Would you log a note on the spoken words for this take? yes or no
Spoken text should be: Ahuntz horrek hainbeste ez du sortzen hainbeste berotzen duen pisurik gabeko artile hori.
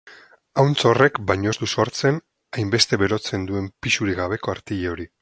yes